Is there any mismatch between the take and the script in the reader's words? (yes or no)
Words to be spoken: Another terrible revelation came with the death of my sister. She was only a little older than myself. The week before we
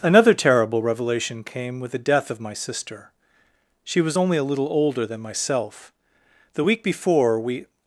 no